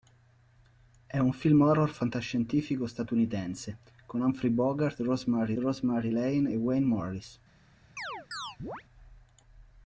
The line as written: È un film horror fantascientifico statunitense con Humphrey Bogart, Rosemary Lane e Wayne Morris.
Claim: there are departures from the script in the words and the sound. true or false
true